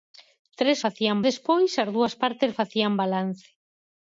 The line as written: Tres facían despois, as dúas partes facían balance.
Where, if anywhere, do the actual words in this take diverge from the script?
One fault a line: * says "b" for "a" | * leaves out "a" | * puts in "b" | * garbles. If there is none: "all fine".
all fine